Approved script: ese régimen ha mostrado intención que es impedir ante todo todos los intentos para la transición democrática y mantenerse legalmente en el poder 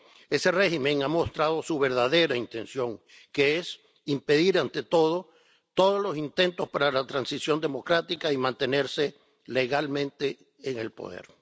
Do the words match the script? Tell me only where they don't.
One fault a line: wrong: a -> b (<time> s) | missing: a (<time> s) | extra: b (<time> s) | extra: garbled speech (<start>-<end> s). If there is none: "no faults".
extra: su verdadera (1.6 s)